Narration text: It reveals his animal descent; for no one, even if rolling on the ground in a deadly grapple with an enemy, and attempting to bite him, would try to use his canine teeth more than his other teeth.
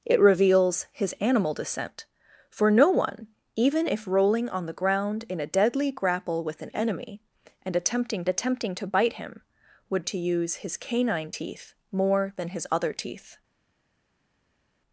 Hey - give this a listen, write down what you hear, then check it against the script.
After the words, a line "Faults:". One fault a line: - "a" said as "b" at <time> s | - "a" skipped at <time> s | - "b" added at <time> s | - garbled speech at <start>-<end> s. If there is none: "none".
It reveals his animal descent; for no one, even if rolling on the ground in a deadly grapple with an enemy, and attempting attempting to bite him, would to use his canine teeth more than his other teeth.
Faults:
- "attempting" added at 8.3 s
- "try" skipped at 10.0 s